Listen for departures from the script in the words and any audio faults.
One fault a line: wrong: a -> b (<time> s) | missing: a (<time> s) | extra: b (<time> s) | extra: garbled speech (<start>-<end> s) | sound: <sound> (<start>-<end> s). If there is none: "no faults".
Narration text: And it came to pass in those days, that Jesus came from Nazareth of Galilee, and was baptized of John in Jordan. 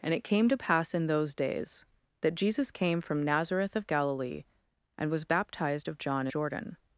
missing: in (6.3 s)